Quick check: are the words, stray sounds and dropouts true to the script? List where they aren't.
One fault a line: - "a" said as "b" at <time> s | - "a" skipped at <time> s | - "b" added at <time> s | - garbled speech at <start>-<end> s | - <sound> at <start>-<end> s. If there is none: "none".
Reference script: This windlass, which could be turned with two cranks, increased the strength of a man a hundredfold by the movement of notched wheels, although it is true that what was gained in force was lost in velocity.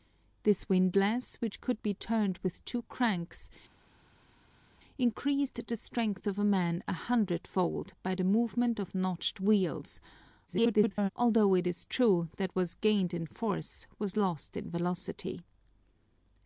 - garbled speech at 10.5-11.1 s